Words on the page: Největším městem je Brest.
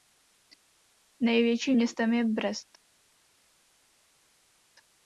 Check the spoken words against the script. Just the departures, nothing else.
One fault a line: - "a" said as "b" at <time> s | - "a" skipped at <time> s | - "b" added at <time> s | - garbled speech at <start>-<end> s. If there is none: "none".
none